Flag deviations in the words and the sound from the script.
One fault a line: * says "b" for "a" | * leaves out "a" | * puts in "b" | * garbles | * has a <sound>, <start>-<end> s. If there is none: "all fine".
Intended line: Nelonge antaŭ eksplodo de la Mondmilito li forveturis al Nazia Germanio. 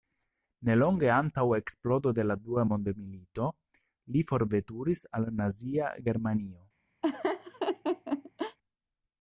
* puts in "Dua"
* has a laugh, 7.0-8.6 s